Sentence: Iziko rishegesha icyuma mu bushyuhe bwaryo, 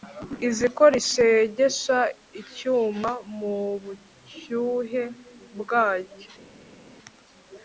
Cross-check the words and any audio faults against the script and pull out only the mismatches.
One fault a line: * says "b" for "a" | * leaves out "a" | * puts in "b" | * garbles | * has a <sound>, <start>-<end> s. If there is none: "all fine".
all fine